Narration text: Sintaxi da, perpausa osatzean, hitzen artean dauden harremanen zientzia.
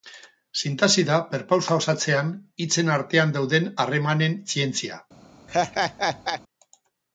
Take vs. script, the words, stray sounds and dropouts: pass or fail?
fail